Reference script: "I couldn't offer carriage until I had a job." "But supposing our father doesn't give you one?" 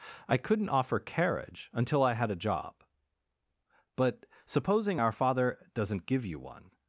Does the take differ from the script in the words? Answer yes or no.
no